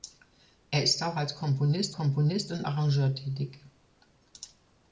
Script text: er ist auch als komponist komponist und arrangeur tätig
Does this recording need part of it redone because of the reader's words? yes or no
no